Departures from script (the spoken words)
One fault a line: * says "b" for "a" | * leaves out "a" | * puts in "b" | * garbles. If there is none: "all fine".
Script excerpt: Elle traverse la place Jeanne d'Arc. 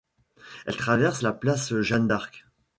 all fine